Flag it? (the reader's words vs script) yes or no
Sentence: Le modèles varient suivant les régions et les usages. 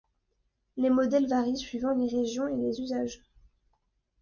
yes